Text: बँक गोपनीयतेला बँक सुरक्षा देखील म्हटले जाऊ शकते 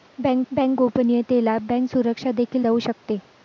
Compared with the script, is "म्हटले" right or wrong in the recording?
wrong